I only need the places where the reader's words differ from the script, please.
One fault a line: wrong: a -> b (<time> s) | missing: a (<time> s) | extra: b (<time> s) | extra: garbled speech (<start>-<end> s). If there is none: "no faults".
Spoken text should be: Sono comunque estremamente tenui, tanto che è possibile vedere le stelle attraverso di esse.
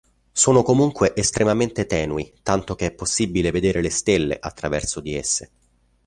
no faults